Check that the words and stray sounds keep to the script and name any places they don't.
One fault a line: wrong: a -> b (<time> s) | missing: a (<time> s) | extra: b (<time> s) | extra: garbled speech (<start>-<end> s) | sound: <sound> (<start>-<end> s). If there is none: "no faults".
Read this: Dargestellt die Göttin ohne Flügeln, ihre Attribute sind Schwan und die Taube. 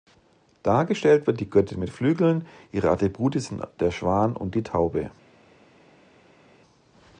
extra: wird (1.3 s)
wrong: ohne -> mit (1.8 s)
extra: der (3.8 s)